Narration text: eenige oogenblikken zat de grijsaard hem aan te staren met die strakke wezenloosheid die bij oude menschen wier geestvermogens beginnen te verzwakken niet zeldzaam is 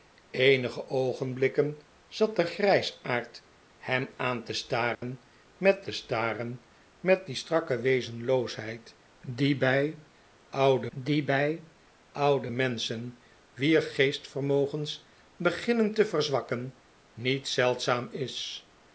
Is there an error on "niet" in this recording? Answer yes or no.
no